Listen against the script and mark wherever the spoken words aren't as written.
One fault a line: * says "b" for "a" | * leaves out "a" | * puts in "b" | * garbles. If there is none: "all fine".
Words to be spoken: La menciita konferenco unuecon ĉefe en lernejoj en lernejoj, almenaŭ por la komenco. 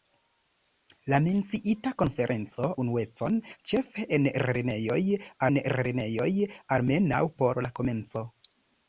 all fine